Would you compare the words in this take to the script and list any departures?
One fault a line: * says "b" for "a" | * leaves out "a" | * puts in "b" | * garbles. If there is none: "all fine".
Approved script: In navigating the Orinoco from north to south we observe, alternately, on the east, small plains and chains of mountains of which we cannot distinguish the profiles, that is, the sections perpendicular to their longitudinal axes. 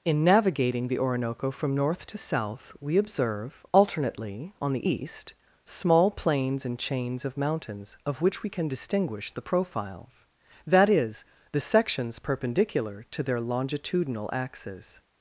* says "can" for "cannot"